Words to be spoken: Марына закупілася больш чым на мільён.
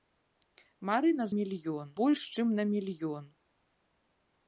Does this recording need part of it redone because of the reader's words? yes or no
yes